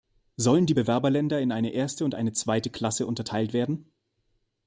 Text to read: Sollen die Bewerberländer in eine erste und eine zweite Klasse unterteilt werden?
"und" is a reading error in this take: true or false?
false